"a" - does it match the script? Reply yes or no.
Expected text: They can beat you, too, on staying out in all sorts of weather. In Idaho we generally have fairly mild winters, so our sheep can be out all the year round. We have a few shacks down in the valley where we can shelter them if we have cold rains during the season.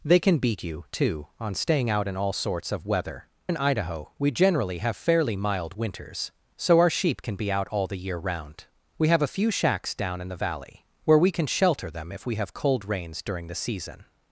yes